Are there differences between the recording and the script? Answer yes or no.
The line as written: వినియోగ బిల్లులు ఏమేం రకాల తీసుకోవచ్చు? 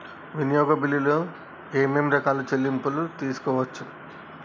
yes